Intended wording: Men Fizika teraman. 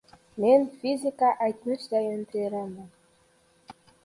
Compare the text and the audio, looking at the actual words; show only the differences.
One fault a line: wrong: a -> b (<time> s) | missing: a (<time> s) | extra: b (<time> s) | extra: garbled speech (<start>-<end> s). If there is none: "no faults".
extra: aytmishdayin (1.5 s)